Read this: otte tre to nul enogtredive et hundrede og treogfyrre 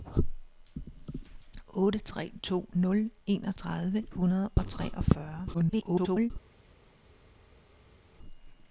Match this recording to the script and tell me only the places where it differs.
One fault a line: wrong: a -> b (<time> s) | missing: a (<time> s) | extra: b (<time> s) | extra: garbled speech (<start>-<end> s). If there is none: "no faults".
missing: et (4.1 s)
extra: garbled speech (5.5-6.3 s)